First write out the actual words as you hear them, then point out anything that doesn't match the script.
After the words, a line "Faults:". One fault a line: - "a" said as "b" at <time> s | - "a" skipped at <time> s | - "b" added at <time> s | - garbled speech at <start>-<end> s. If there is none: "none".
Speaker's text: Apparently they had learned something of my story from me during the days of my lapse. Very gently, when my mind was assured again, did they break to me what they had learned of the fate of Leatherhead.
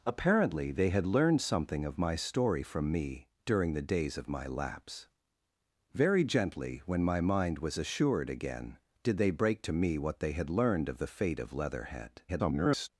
Apparently they had learned something of my story from me during the days of my lapse. Very gently, when my mind was assured again, did they break to me what they had learned of the fate of Leatherhead. [garbled]
Faults:
- garbled speech at 12.3-12.9 s